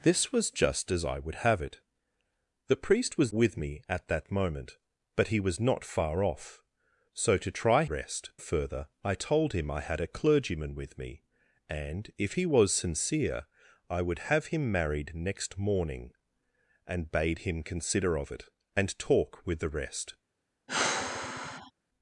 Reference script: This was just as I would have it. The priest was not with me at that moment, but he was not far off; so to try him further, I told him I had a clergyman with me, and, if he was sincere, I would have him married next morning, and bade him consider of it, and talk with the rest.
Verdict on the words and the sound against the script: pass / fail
fail